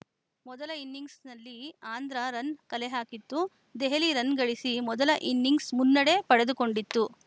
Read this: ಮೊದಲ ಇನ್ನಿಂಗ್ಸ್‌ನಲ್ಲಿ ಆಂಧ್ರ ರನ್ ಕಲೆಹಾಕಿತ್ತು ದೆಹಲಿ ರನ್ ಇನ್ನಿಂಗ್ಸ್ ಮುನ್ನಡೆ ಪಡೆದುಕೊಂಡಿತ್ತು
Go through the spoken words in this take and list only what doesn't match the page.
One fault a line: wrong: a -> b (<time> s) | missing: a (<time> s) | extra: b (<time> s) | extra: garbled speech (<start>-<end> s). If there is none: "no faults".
extra: ಗಳಿಸಿ ಮೊದಲ (4.4 s)